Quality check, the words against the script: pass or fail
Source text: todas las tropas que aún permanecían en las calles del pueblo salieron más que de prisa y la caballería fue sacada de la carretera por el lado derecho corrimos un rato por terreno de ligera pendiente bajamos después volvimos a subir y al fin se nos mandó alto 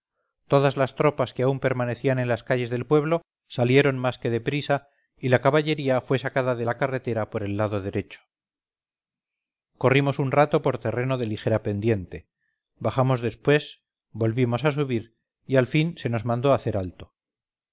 fail